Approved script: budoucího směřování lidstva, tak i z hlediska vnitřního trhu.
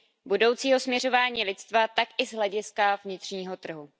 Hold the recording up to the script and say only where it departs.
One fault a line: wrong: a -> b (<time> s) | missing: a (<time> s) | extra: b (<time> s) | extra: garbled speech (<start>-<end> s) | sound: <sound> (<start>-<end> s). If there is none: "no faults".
no faults